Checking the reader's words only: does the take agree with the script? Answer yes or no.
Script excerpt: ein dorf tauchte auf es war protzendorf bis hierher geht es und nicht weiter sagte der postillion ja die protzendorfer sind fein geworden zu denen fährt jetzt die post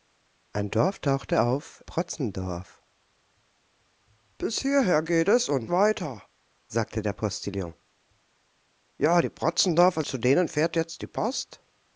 no